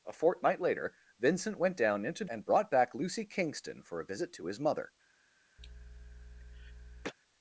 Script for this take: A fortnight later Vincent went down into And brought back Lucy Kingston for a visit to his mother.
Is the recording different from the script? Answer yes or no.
no